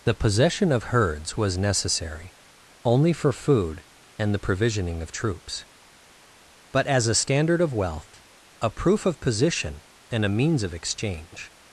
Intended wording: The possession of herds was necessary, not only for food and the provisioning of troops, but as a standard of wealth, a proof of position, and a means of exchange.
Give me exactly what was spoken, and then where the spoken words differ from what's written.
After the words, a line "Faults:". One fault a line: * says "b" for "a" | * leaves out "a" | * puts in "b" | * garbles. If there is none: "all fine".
The possession of herds was necessary, only for food and the provisioning of troops, but as a standard of wealth, a proof of position, and a means of exchange.
Faults:
* leaves out "not"